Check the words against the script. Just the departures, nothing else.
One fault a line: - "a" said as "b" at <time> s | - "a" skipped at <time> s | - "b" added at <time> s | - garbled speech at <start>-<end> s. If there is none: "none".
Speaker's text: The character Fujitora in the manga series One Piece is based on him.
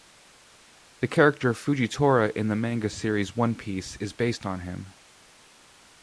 none